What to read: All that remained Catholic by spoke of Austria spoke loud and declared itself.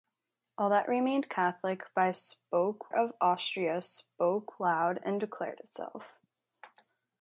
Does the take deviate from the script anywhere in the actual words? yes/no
no